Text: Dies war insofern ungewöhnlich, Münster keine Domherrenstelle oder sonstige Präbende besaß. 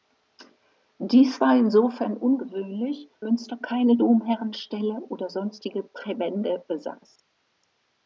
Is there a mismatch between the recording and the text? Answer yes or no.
no